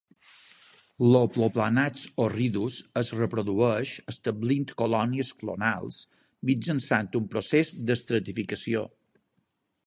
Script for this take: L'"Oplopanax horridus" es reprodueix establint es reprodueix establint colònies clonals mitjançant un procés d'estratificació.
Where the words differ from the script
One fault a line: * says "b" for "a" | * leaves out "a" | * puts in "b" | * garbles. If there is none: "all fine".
* leaves out "es reprodueix establint"